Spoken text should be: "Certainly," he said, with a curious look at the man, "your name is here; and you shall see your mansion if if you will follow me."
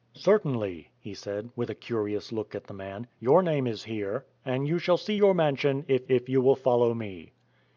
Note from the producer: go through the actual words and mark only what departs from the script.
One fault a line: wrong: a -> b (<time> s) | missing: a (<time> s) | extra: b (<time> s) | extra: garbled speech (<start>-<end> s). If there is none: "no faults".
no faults